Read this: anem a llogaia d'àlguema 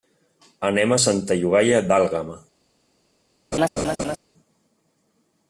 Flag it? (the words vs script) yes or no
yes